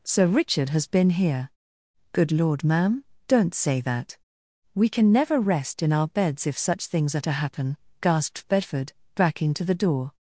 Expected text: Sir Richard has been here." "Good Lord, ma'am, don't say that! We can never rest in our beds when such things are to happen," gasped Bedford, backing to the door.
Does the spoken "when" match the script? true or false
false